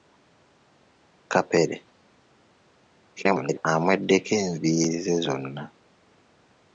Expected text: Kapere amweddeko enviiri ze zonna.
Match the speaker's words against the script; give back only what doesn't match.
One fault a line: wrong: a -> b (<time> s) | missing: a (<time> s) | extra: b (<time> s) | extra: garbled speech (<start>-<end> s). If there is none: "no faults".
extra: garbled speech (3.2-3.6 s)